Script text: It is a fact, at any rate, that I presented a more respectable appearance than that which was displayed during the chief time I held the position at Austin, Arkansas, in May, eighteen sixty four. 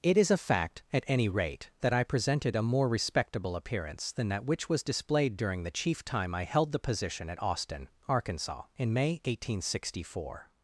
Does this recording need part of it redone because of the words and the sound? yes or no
no